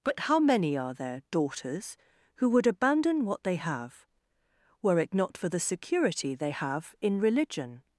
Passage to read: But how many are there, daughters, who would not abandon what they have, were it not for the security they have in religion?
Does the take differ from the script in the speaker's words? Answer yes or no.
yes